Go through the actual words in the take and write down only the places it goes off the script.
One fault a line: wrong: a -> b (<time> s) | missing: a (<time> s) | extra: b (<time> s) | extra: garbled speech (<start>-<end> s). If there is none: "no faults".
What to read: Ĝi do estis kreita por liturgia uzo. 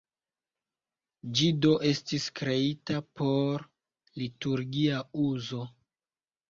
no faults